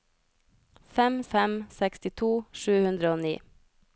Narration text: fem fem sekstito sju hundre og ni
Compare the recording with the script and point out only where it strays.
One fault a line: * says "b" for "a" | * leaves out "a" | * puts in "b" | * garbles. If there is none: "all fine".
all fine